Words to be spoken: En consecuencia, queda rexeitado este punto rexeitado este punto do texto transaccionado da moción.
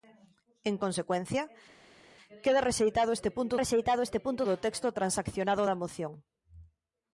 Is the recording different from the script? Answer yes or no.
no